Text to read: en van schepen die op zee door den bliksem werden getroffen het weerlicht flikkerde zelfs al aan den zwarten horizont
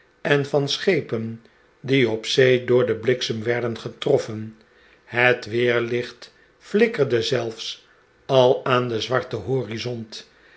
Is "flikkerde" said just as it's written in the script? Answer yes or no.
yes